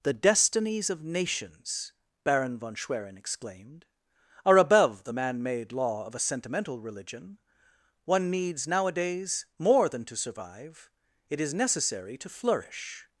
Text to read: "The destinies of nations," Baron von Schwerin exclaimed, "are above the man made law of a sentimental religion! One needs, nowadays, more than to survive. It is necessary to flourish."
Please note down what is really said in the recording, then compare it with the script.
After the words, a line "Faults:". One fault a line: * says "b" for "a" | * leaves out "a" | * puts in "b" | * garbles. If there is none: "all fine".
"The destinies of nations," Baron von Schwerin exclaimed, "are above the man made law of a sentimental religion! One needs, nowadays, more than to survive. It is necessary to flourish."
Faults:
all fine